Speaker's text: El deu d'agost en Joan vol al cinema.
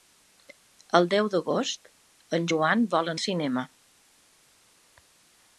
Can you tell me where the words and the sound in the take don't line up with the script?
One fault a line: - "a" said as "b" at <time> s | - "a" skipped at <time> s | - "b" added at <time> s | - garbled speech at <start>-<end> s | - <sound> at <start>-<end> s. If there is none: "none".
none